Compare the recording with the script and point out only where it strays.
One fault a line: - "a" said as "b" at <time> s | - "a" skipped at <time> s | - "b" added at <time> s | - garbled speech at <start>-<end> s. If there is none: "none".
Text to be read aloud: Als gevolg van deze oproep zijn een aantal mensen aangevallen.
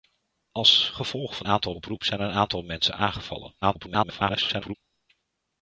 - "deze" said as "aantal" at 1.4 s
- garbled speech at 3.6-4.7 s